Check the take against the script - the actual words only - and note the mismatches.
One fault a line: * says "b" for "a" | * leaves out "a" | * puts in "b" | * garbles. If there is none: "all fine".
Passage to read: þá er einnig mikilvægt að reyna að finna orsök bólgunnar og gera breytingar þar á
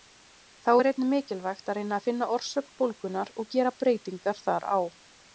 all fine